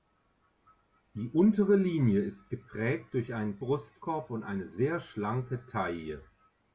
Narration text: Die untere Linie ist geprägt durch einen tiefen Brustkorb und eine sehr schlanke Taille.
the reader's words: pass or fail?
fail